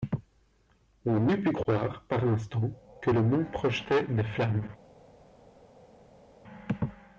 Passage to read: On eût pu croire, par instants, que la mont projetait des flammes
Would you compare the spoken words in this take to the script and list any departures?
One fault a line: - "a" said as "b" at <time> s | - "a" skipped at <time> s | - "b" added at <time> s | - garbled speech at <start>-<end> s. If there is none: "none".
- "la" said as "le" at 3.1 s